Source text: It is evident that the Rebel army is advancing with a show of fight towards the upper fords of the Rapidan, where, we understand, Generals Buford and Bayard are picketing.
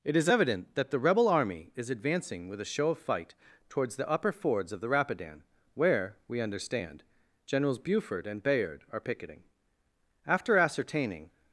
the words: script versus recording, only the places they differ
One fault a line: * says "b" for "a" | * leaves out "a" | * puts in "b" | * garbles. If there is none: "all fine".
* puts in "After ascertaining"